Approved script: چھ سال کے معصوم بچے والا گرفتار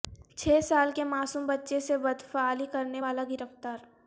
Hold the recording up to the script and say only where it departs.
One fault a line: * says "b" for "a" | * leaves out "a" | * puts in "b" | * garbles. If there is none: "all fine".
* puts in "سے بدفعلی کرنے"